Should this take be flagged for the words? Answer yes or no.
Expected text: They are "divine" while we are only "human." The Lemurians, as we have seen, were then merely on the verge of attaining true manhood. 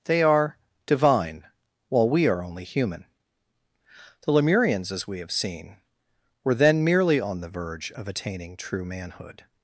no